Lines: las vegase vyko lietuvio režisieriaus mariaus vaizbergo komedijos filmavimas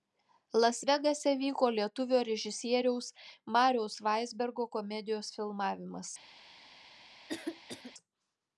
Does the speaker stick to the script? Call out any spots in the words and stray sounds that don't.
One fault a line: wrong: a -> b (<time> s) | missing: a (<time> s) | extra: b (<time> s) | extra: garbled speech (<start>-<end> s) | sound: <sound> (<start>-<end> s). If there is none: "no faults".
sound: cough (7.3-7.9 s)